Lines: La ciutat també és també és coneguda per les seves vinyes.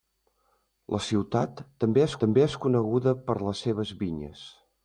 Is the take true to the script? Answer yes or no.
yes